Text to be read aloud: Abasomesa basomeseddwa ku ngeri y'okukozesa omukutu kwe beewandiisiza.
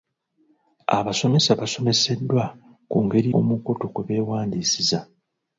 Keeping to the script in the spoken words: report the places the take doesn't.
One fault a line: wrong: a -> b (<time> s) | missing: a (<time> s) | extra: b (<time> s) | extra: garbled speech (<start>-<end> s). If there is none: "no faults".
missing: y'okukozesa (3.3 s)